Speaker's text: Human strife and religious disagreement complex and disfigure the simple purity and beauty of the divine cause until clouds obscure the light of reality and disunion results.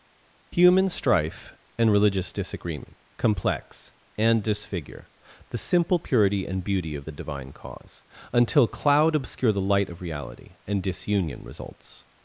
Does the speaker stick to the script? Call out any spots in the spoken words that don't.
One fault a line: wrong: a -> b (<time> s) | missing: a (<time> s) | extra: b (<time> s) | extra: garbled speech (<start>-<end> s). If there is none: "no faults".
wrong: clouds -> cloud (8.7 s)